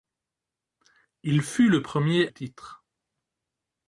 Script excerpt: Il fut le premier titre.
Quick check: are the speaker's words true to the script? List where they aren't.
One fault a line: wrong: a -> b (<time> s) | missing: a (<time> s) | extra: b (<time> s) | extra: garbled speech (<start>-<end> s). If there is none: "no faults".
no faults